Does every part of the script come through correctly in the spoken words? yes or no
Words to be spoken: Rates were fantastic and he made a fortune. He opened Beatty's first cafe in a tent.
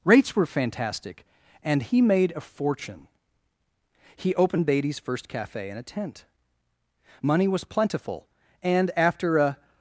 no